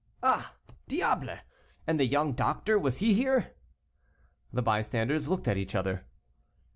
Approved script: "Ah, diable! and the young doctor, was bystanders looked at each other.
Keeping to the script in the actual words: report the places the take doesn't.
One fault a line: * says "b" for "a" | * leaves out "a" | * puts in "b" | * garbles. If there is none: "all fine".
* puts in "he here The"